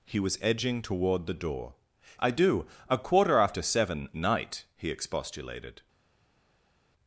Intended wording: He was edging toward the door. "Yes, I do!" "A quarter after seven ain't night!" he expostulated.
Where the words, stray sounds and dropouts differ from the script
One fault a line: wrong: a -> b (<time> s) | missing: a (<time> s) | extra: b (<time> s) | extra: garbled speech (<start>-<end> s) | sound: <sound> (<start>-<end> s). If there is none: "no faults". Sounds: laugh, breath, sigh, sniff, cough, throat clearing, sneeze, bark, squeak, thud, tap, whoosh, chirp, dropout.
missing: Yes (1.7 s)
missing: ain't (4.1 s)